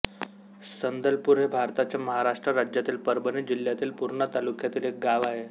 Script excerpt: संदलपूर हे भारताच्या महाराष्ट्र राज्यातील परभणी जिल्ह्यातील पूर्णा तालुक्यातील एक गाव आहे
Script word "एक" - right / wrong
right